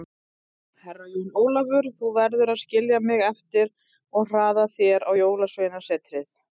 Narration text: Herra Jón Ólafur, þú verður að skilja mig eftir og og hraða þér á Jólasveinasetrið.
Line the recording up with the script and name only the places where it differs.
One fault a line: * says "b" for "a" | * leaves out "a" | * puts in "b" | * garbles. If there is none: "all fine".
* leaves out "og"